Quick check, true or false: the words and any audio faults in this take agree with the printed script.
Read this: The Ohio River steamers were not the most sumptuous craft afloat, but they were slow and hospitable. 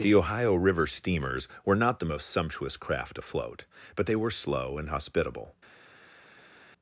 true